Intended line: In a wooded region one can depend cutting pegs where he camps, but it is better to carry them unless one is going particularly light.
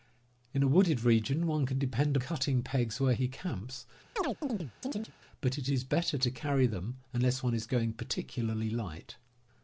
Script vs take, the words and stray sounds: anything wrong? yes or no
yes